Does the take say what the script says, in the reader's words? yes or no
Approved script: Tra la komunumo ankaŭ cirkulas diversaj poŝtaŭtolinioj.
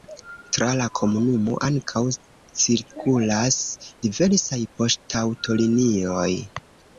yes